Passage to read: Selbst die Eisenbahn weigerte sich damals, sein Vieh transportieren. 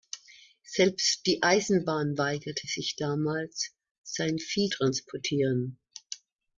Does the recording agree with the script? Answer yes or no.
yes